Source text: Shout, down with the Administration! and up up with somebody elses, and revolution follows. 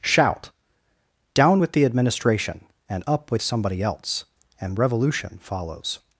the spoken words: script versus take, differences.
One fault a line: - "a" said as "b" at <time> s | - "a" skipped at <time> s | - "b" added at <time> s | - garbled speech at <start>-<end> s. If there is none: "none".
- "up" skipped at 3.3 s
- "elses" said as "else" at 3.8 s